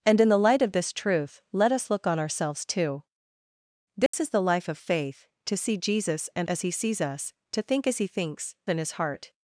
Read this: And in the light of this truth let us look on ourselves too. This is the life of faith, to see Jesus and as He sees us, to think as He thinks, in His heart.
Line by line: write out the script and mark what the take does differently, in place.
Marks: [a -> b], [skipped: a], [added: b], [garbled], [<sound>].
And in the light of this truth let us look on ourselves too. This [dropout] is the life of faith, to see Jesus and as He sees us, to think as He thinks, in His heart.